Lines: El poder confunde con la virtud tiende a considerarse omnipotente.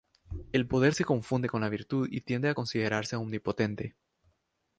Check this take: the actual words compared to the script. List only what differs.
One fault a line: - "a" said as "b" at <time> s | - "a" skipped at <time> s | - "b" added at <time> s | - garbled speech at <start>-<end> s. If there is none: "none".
- "se" added at 0.9 s
- "y" added at 2.1 s